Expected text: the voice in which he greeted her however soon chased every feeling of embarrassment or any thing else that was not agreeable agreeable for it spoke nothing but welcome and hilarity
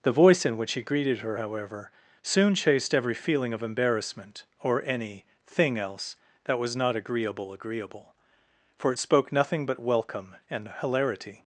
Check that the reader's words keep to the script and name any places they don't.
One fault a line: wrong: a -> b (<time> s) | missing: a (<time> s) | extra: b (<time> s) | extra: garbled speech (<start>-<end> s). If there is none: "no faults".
no faults